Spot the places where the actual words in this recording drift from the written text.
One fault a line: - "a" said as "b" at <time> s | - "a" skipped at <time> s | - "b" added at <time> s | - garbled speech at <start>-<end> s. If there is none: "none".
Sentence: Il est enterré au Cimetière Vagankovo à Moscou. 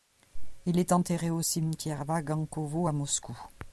none